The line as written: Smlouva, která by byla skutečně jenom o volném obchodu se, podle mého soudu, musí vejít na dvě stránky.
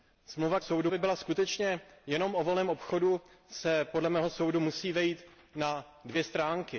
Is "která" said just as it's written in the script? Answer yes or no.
no